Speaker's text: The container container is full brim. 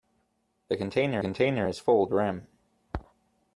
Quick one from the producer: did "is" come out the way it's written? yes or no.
yes